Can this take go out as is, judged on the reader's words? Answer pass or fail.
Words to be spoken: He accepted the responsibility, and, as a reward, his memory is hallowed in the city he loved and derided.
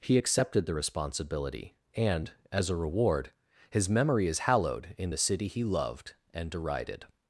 pass